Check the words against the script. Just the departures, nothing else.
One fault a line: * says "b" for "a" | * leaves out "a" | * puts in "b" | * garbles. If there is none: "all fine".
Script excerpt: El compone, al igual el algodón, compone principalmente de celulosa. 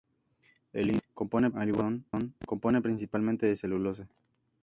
all fine